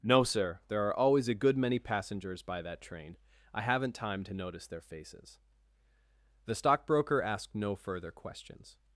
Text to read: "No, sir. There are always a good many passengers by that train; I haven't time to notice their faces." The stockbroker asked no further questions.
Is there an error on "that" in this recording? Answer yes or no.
no